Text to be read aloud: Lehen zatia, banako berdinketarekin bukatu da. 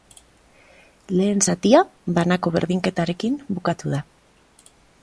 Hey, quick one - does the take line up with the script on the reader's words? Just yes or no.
yes